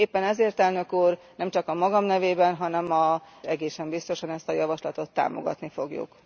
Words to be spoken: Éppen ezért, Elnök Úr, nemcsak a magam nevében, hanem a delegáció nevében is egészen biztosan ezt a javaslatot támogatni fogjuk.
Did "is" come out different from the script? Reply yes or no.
yes